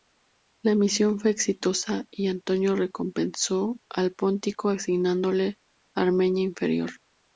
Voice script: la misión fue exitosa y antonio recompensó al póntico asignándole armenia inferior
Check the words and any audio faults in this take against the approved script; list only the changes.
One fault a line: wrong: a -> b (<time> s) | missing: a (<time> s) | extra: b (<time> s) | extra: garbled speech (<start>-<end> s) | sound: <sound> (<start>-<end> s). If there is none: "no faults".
no faults